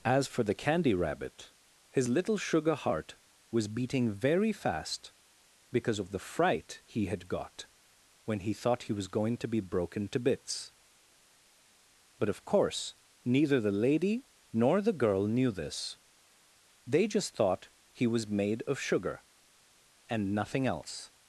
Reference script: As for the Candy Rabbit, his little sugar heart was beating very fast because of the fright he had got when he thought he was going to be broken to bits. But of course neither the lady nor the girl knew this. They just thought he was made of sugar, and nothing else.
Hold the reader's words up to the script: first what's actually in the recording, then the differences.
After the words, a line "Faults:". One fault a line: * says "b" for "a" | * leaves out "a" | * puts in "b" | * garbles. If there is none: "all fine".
As for the Candy Rabbit, his little sugar heart was beating very fast because of the fright he had got when he thought he was going to be broken to bits. But of course neither the lady nor the girl knew this. They just thought he was made of sugar, and nothing else.
Faults:
all fine